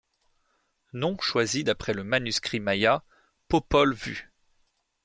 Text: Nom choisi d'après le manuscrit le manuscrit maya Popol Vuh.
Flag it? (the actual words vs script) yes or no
yes